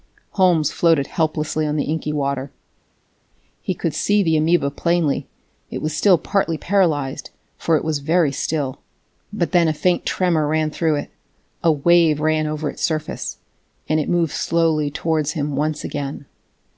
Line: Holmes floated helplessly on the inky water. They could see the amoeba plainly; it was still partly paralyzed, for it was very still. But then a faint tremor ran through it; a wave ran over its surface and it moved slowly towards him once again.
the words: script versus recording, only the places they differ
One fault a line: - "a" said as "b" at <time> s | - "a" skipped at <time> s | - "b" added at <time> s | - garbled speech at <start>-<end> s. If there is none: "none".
- "They" said as "He" at 3.6 s